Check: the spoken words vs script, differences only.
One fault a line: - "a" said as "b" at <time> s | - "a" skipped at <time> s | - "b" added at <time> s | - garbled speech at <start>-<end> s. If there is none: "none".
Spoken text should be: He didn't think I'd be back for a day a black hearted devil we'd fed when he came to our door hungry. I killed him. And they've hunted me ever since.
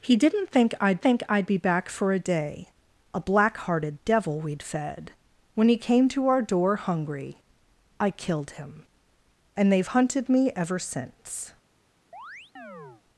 - "think I'd" added at 1.0 s